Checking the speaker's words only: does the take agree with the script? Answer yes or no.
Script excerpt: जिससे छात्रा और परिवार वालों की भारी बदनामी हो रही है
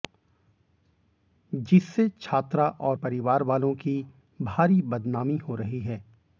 yes